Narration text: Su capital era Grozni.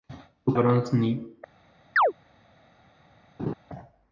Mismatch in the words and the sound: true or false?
true